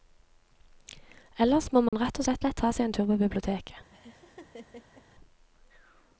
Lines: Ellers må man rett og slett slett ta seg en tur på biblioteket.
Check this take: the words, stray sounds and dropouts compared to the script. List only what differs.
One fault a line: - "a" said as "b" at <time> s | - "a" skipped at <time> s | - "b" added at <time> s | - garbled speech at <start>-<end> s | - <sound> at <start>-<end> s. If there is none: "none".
- dropout at 1.9-1.9 s
- laugh at 3.9-5.0 s